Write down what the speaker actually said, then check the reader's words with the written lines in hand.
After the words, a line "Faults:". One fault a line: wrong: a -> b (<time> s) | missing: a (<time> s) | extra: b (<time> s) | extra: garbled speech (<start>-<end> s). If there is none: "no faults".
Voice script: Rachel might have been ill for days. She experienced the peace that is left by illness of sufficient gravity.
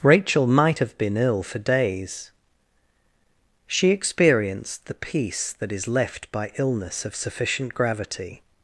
Rachel might have been ill for days. She experienced the peace that is left by illness of sufficient gravity.
Faults:
no faults